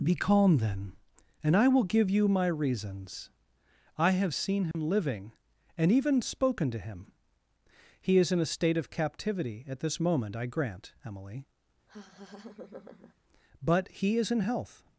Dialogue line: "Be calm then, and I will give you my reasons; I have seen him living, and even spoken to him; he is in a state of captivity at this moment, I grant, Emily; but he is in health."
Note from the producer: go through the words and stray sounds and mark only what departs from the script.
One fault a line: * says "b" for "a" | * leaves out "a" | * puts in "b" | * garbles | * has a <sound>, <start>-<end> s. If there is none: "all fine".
* has a dropout, 4.7-4.7 s
* has a laugh, 11.9-13.1 s